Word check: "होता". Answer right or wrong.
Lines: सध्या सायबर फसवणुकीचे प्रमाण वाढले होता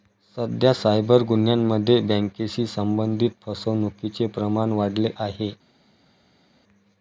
wrong